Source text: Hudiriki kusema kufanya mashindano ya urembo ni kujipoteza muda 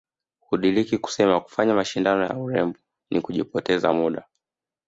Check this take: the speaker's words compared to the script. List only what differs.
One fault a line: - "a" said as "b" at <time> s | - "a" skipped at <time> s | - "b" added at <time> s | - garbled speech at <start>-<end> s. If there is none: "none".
none